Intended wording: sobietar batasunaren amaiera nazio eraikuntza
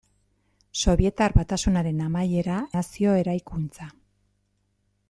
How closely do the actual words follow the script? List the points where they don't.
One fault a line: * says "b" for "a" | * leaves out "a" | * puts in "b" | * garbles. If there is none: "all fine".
all fine